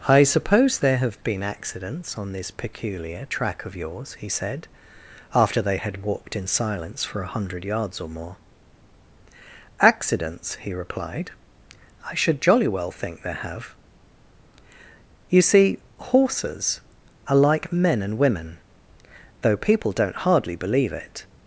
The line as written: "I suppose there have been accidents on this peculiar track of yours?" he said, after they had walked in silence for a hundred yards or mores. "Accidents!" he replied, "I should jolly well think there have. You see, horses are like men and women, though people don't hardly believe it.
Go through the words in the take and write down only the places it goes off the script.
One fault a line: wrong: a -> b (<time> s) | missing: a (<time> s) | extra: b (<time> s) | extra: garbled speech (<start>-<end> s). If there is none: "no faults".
wrong: mores -> more (8.1 s)